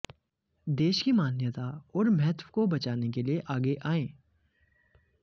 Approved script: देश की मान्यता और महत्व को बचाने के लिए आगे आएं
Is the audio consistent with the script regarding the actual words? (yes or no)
yes